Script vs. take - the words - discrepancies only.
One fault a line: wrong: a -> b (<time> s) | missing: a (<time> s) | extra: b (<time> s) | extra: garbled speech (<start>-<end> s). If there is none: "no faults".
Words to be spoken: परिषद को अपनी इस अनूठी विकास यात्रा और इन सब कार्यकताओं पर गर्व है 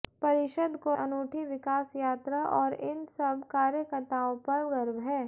missing: अपनी इस (0.9 s)